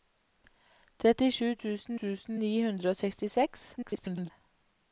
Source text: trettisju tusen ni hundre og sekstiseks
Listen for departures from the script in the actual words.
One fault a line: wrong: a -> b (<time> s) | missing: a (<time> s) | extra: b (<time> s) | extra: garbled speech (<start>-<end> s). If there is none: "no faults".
extra: tusen (2.0 s)
extra: garbled speech (3.8-4.3 s)